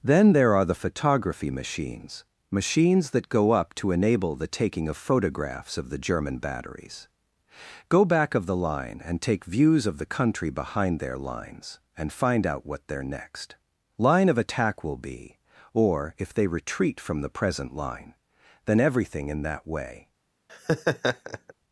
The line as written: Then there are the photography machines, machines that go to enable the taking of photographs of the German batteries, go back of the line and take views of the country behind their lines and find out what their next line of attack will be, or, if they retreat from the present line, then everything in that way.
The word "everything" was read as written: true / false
true